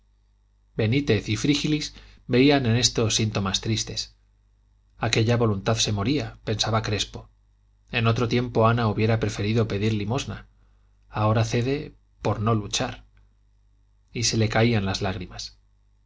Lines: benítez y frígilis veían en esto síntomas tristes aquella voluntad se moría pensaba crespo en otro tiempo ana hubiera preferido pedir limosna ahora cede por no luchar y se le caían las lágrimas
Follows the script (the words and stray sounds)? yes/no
yes